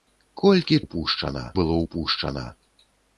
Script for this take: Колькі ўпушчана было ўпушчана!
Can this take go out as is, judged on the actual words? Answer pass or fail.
pass